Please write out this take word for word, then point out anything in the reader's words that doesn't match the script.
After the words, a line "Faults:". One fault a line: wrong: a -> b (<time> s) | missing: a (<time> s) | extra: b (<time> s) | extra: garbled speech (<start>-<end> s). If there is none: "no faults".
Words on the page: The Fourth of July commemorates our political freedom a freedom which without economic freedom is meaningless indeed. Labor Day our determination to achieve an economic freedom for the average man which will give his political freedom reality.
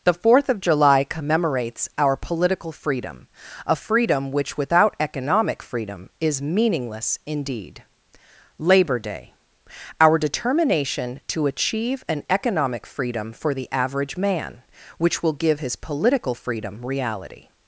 The Fourth of July commemorates our political freedom a freedom which without economic freedom is meaningless indeed. Labor Day our determination to achieve an economic freedom for the average man which will give his political freedom reality.
Faults:
no faults